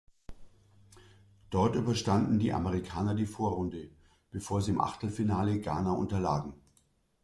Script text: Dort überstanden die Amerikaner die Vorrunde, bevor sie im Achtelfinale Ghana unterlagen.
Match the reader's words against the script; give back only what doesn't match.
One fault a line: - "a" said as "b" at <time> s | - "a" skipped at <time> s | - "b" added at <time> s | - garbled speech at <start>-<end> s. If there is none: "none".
none